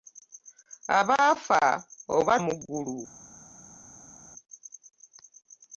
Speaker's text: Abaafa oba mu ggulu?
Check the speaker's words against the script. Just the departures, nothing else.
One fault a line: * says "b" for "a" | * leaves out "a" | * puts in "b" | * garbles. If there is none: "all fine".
all fine